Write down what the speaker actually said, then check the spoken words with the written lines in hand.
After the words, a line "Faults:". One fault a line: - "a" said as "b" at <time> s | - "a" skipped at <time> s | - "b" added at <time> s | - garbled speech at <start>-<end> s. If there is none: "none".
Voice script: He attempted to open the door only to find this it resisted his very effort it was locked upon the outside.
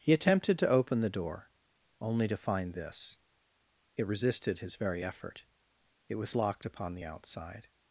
He attempted to open the door only to find this it resisted his very effort it was locked upon the outside.
Faults:
none